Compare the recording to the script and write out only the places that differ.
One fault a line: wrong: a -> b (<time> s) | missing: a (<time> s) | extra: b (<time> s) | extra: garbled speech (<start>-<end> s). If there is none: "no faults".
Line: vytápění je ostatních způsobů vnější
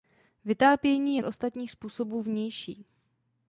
no faults